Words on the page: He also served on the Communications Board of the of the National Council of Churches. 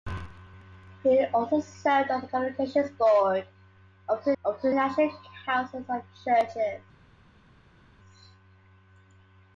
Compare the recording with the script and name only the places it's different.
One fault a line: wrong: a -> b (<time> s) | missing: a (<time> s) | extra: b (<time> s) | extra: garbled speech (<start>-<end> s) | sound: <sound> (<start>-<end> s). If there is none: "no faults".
no faults